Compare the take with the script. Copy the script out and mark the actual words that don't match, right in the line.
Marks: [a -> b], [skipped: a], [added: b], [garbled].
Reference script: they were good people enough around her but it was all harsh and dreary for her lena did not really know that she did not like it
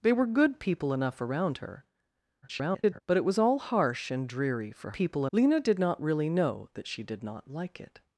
they were good people enough around her [garbled] but it was all harsh and dreary for [her -> people] lena did not really know that she did not like it